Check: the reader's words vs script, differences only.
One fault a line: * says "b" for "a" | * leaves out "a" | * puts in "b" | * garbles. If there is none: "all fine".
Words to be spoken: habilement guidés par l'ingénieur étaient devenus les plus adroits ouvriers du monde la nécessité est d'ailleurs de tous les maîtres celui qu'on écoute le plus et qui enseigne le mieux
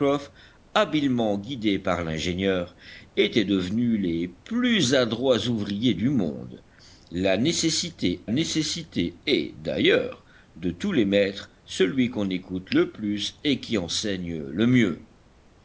* puts in "nécessité"